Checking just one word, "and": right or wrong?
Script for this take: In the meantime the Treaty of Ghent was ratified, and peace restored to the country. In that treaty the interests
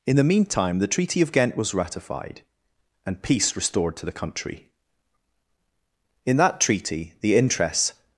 right